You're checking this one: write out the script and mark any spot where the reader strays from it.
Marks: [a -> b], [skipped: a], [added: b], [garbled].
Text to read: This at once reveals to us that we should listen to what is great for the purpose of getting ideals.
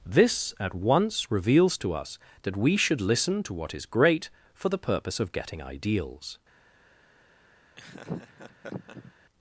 This at once reveals to us that we should listen to what is great for the purpose of getting ideals.